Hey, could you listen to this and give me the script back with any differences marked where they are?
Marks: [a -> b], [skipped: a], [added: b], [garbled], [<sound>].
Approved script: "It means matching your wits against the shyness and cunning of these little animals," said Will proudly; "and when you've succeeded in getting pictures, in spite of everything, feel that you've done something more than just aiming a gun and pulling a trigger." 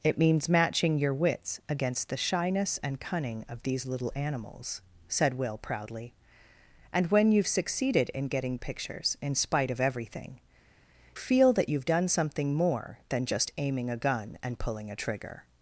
"It means matching your wits against the shyness and cunning of these little animals," said Will proudly; "and when you've succeeded in getting pictures, in spite of everything, feel that you've done something more than just aiming a gun and pulling a trigger."